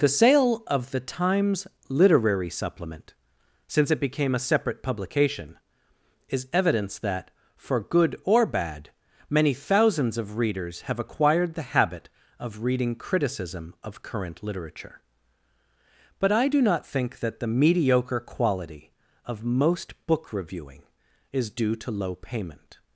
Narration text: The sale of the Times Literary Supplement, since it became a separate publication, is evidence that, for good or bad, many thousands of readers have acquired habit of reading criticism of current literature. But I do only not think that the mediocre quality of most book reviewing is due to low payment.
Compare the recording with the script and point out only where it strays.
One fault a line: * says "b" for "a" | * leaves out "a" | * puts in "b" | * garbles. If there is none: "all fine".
* puts in "the"
* leaves out "only"